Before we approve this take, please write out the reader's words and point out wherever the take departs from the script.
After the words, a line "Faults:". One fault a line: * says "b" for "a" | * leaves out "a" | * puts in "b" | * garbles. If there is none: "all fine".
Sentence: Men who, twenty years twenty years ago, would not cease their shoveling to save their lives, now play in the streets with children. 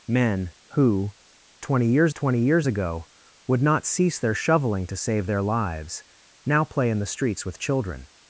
Men who, twenty years twenty years ago, would not cease their shoveling to save their lives, now play in the streets with children.
Faults:
all fine